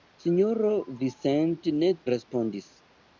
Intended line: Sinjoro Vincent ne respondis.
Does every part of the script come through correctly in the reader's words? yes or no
yes